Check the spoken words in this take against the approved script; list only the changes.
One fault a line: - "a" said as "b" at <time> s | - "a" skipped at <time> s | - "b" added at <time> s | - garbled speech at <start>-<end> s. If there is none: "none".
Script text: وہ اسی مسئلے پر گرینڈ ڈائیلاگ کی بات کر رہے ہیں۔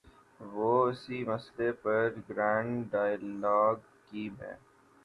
- "بات کر رہے" skipped at 4.3 s